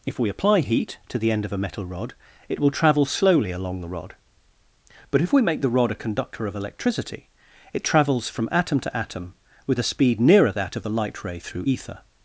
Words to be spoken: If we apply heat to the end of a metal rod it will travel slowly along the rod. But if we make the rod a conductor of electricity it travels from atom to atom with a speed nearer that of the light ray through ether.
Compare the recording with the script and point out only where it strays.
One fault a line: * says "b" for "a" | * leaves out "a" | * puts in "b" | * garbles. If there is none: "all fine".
all fine